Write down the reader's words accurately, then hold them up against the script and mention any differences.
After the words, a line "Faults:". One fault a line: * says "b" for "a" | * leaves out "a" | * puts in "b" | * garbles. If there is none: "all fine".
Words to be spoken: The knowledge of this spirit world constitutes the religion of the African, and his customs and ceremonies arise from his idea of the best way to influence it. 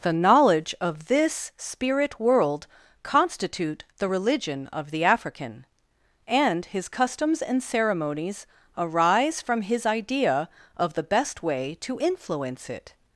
The knowledge of this spirit world constitute the religion of the African, and his customs and ceremonies arise from his idea of the best way to influence it.
Faults:
* says "constitute" for "constitutes"